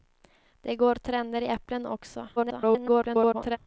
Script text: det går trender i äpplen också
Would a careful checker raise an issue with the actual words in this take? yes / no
yes